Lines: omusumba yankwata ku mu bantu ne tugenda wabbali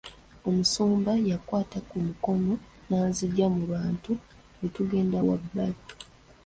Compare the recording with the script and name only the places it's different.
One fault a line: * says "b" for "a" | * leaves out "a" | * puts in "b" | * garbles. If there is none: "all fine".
* puts in "mukono n'anzigya"